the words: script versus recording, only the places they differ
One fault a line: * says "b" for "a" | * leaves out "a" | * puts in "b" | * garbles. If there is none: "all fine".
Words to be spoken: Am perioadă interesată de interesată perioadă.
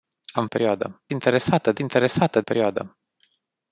all fine